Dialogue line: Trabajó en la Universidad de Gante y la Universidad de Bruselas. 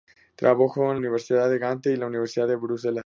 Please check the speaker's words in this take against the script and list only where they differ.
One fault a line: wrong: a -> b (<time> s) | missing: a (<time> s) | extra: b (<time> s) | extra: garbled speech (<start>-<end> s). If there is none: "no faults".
missing: la (1.0 s)